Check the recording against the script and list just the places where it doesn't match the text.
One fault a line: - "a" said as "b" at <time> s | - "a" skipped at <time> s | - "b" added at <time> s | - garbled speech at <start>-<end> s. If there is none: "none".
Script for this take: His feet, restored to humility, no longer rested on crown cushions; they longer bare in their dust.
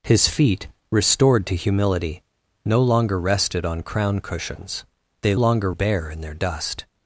none